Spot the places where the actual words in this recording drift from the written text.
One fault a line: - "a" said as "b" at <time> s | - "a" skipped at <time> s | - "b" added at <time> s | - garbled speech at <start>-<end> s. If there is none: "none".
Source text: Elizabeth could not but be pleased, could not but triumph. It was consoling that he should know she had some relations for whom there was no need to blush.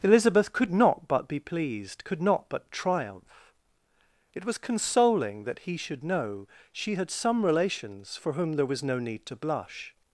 none